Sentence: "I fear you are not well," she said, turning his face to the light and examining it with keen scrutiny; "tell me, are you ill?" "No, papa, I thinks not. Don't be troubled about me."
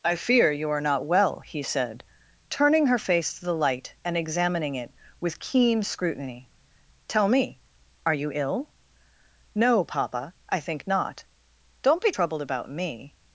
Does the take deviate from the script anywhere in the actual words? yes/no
yes